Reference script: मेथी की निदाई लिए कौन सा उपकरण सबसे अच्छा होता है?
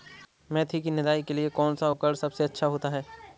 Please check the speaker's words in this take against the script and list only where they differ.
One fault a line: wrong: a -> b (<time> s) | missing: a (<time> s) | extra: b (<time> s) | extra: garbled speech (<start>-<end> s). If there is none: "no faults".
extra: के (1.2 s)